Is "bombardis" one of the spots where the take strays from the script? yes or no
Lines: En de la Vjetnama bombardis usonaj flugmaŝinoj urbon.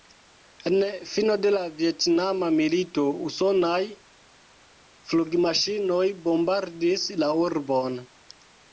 yes